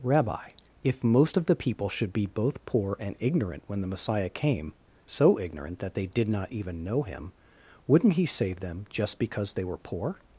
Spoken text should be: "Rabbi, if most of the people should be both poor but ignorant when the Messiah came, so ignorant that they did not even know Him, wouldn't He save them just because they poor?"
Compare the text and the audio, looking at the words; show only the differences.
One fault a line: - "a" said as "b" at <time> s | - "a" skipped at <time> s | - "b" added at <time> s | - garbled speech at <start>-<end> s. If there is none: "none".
- "but" said as "and" at 3.0 s
- "were" added at 9.6 s